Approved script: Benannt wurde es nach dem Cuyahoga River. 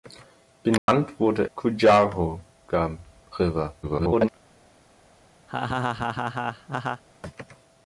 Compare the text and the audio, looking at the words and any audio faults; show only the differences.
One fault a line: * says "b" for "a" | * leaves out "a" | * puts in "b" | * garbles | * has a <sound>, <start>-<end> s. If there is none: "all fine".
* has a dropout, 0.8-0.9 s
* leaves out "es nach dem"
* garbles
* has a laugh, 5.5-7.0 s